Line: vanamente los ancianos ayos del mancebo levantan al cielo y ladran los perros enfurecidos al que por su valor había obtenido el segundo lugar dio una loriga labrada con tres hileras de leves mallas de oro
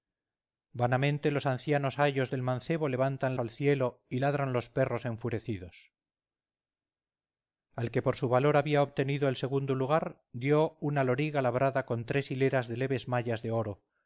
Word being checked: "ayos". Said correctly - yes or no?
yes